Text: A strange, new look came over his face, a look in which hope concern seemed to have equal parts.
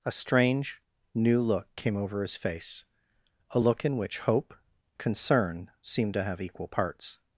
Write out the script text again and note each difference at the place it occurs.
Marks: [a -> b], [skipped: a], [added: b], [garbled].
A strange, new look came over his face, a look in which hope concern seemed to have equal parts.